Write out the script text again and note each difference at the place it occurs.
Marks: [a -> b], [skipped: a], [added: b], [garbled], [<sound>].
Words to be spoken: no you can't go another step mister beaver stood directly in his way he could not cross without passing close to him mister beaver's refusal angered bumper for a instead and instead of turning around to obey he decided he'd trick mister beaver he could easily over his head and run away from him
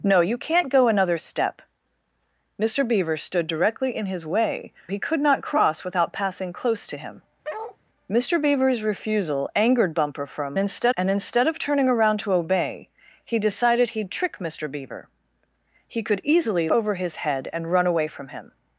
no you can't go another step mister beaver stood directly in his way he could not cross without passing close to him [bark] mister beaver's refusal angered bumper for a instead and instead of turning around to obey he decided he'd trick mister beaver he could easily over his head and run away from him